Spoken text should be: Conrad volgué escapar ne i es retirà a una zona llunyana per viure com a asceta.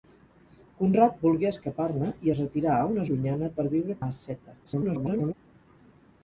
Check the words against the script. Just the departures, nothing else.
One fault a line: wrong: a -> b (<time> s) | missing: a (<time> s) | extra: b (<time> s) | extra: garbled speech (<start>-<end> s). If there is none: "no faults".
missing: zona (3.1 s)
missing: com (4.0 s)
extra: garbled speech (4.6-5.3 s)